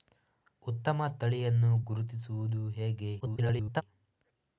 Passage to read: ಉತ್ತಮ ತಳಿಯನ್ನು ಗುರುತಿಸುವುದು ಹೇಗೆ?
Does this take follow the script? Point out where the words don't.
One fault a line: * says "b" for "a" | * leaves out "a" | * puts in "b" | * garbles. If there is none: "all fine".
* garbles